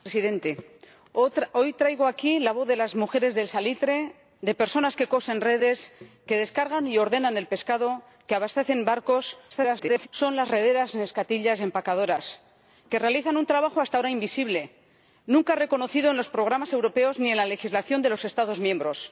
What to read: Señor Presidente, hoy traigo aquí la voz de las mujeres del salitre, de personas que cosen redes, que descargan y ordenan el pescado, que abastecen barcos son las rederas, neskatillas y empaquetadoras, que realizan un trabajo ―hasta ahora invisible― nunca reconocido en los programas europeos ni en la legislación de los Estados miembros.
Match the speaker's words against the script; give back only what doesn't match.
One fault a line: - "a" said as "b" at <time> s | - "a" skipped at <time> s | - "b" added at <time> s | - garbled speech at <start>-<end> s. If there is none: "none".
- garbled speech at 9.5-10.1 s